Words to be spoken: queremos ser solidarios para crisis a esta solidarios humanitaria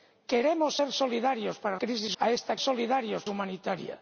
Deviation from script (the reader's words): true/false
false